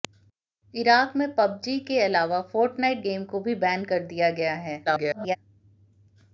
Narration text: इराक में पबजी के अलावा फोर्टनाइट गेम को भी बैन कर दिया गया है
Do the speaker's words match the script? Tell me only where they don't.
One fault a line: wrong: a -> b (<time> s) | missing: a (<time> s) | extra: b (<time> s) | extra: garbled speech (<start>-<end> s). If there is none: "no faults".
extra: garbled speech (4.9-5.4 s)